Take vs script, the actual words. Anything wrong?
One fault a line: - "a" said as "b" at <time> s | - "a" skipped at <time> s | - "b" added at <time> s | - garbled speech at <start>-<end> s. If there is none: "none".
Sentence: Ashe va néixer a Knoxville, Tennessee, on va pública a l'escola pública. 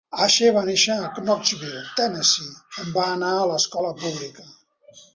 - "pública" said as "anar" at 3.2 s